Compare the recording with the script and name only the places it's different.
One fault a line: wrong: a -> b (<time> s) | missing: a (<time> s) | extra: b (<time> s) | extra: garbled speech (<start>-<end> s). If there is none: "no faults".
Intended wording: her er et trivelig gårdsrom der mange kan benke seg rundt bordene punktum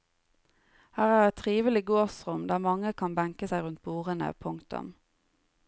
no faults